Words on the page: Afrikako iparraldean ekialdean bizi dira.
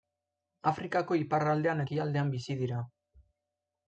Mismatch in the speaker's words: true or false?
false